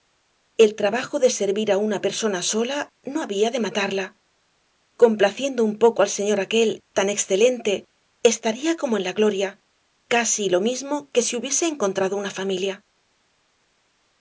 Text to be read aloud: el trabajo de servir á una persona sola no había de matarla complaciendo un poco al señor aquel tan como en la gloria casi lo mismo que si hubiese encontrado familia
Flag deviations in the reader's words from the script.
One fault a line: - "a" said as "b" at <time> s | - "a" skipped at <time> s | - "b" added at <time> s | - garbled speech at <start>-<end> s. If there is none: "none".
- "excelente estaría" added at 7.2 s
- "una" added at 12.2 s